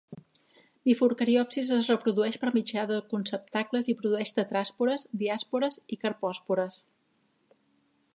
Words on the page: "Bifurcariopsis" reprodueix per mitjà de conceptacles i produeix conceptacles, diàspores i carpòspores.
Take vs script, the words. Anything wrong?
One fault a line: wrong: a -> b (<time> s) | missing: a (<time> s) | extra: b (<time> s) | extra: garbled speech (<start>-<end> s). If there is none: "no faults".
extra: es (1.8 s)
wrong: conceptacles -> tetràspores (4.4 s)